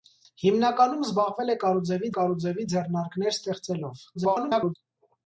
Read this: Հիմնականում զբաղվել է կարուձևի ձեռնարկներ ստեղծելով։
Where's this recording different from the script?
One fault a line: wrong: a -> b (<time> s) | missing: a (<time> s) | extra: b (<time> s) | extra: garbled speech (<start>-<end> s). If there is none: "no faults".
extra: կարուձևի (2.2 s)
extra: garbled speech (4.1-4.7 s)